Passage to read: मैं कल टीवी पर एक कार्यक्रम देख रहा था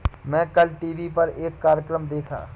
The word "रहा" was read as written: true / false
false